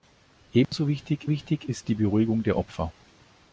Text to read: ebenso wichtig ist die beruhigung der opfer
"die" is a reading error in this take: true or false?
false